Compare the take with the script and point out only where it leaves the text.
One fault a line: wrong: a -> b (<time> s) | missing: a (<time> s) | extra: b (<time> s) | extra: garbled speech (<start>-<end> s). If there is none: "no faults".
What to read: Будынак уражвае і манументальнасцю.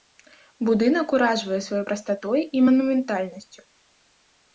extra: сваёй прастатой (1.6 s)